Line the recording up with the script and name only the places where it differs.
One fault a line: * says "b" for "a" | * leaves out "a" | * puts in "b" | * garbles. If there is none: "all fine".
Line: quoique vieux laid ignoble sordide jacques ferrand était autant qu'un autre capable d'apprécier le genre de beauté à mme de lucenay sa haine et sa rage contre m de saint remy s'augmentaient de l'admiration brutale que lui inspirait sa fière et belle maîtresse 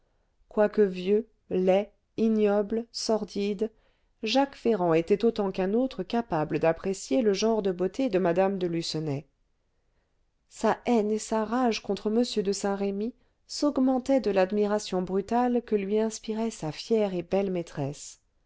* says "de" for "à"